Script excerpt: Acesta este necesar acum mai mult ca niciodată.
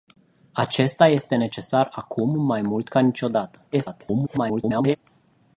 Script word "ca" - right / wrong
right